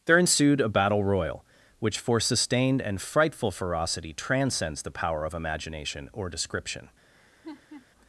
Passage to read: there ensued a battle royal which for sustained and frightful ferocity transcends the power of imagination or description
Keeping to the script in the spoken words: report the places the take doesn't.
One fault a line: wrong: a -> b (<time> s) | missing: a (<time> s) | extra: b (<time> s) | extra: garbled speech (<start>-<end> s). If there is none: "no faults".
no faults